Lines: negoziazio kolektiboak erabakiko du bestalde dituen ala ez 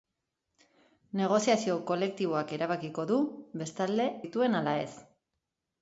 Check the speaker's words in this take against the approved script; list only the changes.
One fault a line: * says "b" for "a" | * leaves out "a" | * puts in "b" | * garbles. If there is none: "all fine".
all fine